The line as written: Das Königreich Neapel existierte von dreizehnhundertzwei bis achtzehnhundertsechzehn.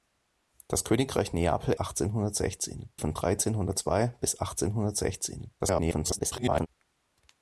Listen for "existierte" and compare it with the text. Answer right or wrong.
wrong